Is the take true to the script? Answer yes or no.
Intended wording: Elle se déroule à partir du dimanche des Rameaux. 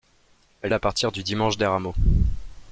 no